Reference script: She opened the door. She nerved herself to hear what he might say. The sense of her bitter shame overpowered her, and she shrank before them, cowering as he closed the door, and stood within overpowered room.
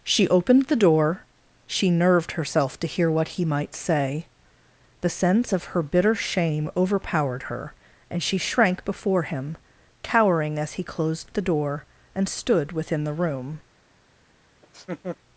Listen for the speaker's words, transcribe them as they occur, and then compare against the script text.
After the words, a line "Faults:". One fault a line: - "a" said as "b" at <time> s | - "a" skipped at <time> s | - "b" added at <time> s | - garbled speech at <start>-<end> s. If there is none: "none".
She opened the door. She nerved herself to hear what he might say. The sense of her bitter shame overpowered her, and she shrank before him, cowering as he closed the door, and stood within the room.
Faults:
- "them" said as "him" at 9.2 s
- "overpowered" said as "the" at 13.0 s